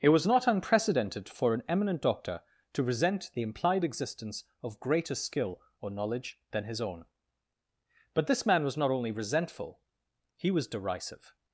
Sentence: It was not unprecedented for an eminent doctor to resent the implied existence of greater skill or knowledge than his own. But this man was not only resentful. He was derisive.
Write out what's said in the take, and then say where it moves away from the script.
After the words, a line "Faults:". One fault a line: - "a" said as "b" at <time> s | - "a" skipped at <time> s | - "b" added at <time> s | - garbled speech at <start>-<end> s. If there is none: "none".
It was not unprecedented for an eminent doctor to resent the implied existence of greater skill or knowledge than his own. But this man was not only resentful. He was derisive.
Faults:
none